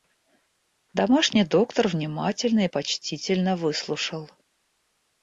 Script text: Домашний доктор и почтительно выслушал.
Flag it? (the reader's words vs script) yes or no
yes